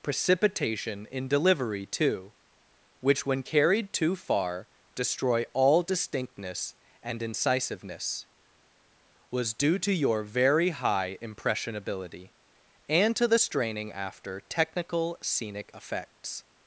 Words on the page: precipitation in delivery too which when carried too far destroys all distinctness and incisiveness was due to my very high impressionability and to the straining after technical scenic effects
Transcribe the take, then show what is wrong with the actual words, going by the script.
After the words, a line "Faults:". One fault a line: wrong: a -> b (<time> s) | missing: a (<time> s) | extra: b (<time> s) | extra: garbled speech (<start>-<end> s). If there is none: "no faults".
precipitation in delivery too which when carried too far destroy all distinctness and incisiveness was due to your very high impressionability and to the straining after technical scenic effects
Faults:
wrong: destroys -> destroy (4.9 s)
wrong: my -> your (9.9 s)